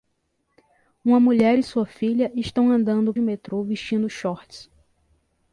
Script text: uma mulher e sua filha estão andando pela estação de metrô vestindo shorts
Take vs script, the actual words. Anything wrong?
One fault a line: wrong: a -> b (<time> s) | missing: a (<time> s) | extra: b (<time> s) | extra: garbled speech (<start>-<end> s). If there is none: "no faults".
missing: pela estação de (3.1 s)